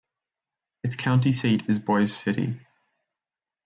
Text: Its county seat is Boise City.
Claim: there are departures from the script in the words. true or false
false